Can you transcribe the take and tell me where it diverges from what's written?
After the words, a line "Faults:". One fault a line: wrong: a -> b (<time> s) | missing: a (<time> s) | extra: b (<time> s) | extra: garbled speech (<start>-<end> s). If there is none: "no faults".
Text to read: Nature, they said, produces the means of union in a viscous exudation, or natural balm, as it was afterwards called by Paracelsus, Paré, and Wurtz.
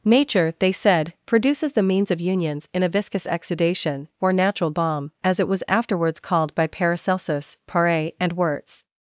Nature, they said, produces the means of unions in a viscous exudation, or natural balm, as it was afterwards called by Paracelsus, Paré, and Wurtz.
Faults:
wrong: union -> unions (2.2 s)